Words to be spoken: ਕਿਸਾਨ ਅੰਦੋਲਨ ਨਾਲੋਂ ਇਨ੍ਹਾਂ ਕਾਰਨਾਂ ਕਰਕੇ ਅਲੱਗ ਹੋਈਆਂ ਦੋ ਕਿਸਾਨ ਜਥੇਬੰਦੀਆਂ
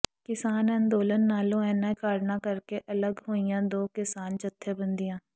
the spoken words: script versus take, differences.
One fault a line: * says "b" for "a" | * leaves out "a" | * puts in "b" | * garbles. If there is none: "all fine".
all fine